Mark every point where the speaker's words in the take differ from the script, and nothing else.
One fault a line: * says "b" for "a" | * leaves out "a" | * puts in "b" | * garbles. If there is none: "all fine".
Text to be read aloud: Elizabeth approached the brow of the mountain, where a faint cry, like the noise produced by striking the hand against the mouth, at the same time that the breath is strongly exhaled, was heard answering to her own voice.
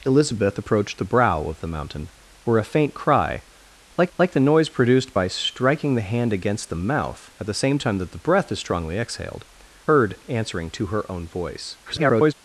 * puts in "like"
* leaves out "was"
* garbles